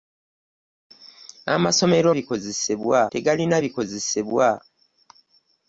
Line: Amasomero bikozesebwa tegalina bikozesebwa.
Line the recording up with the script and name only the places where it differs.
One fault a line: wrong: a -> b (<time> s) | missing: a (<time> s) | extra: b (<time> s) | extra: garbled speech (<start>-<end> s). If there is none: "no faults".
no faults